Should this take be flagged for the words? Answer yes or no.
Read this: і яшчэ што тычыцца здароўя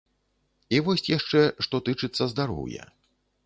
yes